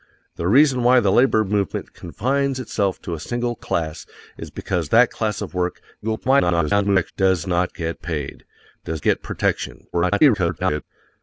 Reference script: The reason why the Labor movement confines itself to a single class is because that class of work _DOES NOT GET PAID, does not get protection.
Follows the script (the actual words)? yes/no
no